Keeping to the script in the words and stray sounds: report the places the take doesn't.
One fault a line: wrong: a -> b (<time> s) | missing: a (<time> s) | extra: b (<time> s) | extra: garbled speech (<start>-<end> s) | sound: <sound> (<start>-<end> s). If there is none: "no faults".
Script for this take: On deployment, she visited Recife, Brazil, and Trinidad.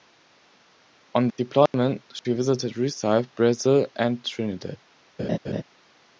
sound: dropout (1.7-1.7 s)
sound: laugh (5.2-5.6 s)